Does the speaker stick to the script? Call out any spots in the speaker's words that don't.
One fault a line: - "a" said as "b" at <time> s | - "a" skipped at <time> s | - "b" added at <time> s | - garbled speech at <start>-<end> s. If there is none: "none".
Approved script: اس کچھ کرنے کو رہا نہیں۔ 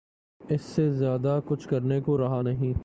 - "سے زیادہ" added at 0.6 s